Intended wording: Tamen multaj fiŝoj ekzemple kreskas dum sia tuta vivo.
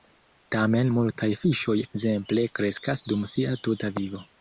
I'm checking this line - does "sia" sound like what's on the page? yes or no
yes